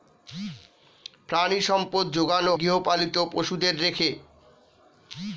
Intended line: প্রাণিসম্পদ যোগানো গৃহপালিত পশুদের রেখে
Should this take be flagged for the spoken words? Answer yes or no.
no